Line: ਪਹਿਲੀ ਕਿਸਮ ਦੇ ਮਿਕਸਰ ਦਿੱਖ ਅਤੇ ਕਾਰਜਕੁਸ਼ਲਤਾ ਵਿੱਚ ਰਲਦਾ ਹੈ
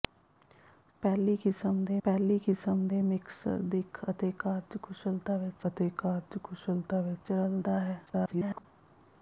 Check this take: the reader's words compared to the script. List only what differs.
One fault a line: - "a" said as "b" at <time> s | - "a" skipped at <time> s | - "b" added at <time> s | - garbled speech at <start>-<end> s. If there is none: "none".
- "ਪਹਿਲੀ ਕਿਸਮ ਦੇ" added at 2.0 s
- "ਅਤੇ ਕਾਰਜਕੁਸ਼ਲਤਾ ਵਿੱਚ" added at 5.7 s
- garbled speech at 8.1-8.7 s